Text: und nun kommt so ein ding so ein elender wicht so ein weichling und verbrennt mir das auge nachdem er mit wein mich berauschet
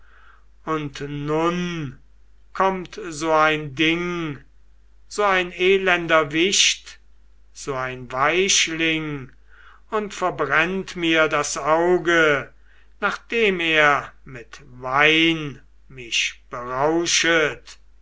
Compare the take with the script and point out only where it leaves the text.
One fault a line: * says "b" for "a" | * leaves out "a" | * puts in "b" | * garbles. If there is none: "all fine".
all fine